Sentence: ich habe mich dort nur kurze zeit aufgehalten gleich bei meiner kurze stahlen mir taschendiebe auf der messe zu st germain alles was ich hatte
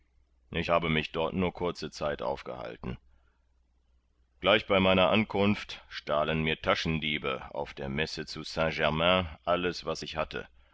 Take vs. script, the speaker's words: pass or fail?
fail